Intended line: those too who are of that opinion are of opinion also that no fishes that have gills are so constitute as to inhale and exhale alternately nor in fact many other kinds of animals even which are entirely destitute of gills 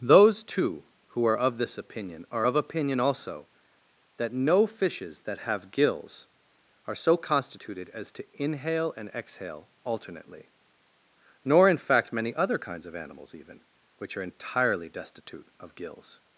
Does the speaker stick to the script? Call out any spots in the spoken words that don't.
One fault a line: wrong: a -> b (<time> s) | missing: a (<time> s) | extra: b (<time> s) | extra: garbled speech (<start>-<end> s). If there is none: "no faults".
wrong: that -> this (1.6 s)
wrong: constitute -> constituted (7.2 s)